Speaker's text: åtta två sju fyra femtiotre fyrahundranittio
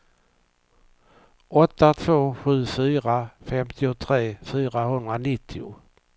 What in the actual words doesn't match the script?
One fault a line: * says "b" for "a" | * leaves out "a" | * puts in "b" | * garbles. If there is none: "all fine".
all fine